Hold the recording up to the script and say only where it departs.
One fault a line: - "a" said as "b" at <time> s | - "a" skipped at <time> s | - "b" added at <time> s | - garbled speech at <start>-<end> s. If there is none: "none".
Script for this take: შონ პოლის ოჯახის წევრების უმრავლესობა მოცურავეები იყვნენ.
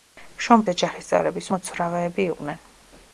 - "პოლის" skipped at 0.6 s
- "უმრავლესობა" skipped at 1.5 s